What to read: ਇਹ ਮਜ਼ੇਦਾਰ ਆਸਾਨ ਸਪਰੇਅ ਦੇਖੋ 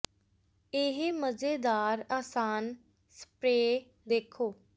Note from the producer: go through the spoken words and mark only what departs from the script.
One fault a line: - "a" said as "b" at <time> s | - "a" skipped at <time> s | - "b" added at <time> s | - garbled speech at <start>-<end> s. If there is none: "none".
none